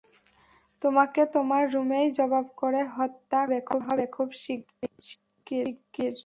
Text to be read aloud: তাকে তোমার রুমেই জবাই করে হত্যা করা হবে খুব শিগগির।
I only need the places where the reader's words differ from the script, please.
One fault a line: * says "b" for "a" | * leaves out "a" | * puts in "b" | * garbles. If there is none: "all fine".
* says "তোমাকে" for "তাকে"